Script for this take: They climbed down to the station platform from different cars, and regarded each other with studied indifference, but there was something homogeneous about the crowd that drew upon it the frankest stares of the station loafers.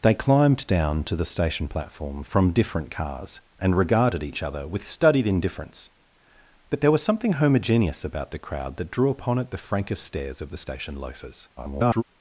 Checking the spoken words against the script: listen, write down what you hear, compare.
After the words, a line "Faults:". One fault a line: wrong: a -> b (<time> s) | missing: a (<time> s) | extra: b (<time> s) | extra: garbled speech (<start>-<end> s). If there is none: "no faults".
They climbed down to the station platform from different cars, and regarded each other with studied indifference, but there was something homogeneous about the crowd that drew upon it the frankest stares of the station loafers. [garbled]
Faults:
extra: garbled speech (11.6-12.0 s)